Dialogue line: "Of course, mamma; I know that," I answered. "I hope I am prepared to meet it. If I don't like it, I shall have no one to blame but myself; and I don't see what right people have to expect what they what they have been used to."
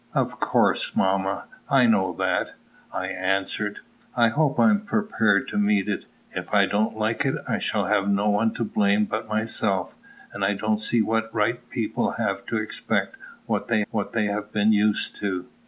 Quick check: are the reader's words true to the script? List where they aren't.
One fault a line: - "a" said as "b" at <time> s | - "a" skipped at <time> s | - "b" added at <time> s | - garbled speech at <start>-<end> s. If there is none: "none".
none